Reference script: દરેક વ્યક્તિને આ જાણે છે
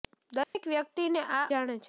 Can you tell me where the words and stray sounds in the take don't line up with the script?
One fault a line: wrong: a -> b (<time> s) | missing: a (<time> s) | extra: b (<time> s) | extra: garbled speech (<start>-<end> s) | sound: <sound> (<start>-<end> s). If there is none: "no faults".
sound: dropout (0.4-0.6 s)